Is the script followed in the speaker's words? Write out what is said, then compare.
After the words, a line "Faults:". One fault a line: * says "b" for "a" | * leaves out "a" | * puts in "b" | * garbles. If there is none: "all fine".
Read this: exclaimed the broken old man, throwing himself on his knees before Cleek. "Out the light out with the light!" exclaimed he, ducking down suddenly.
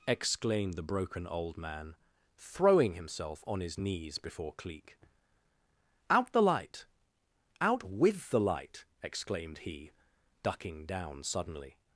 exclaimed the broken old man, throwing himself on his knees before Cleek. "Out the light out with the light!" exclaimed he, ducking down suddenly.
Faults:
all fine